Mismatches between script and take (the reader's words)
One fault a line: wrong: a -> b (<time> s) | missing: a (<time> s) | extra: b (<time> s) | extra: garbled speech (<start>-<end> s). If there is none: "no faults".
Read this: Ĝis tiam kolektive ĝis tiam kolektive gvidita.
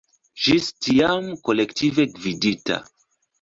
missing: ĝis tiam kolektive (2.1 s)